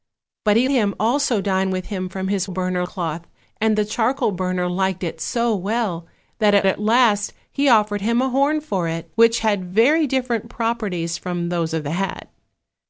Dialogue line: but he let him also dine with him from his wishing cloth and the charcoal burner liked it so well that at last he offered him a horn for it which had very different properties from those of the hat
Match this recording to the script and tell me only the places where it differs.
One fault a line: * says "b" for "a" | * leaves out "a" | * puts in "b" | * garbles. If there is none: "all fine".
* leaves out "let"
* says "burner" for "wishing"
* puts in "at"